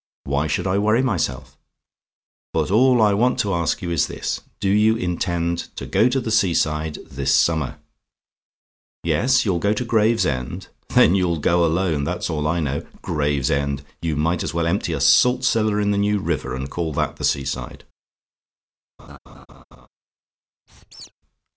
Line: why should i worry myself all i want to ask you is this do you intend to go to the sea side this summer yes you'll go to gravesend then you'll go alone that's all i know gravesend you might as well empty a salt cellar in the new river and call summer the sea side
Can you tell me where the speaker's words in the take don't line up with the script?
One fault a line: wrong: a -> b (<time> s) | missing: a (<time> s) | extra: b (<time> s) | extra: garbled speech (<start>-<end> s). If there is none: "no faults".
extra: but (2.5 s)
wrong: summer -> that (16.9 s)